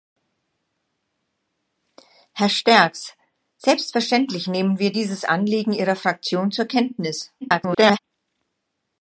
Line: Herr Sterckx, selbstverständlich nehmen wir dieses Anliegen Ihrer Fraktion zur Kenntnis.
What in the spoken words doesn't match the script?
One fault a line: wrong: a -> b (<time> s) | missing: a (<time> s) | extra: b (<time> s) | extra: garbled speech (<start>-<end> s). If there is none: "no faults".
extra: garbled speech (7.4-8.0 s)